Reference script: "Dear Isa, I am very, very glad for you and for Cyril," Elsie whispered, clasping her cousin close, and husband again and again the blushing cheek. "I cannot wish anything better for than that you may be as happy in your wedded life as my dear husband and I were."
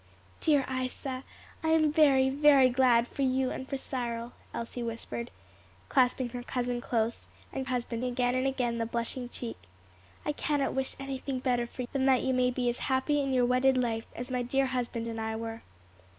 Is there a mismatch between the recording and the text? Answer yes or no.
no